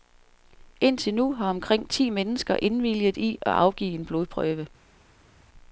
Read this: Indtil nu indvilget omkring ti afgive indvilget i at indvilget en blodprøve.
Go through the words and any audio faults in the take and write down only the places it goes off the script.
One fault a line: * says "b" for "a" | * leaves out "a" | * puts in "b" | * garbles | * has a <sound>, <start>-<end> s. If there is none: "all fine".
* says "har" for "indvilget"
* says "mennesker" for "afgive"
* says "afgive" for "indvilget"